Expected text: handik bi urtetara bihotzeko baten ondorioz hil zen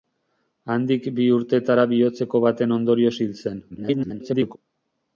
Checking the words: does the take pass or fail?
fail